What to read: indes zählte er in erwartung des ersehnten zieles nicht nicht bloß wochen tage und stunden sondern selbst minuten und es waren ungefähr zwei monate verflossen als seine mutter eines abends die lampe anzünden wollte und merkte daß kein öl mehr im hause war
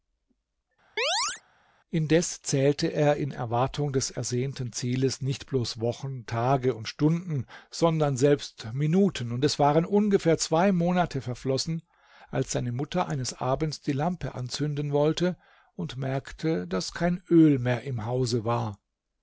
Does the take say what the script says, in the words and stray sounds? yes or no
no